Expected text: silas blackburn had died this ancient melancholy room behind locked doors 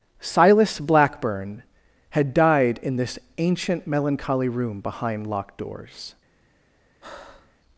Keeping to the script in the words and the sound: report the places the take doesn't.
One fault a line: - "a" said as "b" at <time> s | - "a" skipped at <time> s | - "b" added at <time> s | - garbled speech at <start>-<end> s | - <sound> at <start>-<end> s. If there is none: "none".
- "in" added at 2.8 s
- breath at 7.0-7.6 s